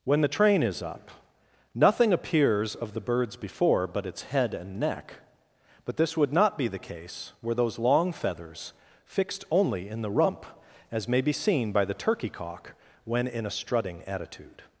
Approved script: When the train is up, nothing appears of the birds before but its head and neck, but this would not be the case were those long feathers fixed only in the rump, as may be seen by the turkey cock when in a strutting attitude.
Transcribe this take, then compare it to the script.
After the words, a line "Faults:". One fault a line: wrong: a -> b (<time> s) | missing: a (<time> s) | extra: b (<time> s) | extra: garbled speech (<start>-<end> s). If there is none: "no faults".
When the train is up, nothing appears of the birds before but its head and neck, but this would not be the case were those long feathers fixed only in the rump, as may be seen by the turkey cock when in a strutting attitude.
Faults:
no faults